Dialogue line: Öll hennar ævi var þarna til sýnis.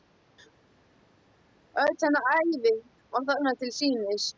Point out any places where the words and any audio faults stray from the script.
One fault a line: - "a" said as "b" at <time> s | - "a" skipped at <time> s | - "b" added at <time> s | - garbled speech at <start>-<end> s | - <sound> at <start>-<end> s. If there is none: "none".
none